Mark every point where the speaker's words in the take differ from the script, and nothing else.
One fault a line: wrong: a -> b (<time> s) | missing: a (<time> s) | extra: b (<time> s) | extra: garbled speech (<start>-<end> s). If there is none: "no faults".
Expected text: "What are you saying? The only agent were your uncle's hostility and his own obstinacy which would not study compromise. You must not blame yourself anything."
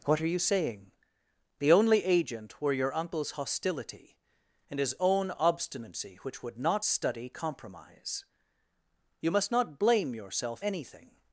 no faults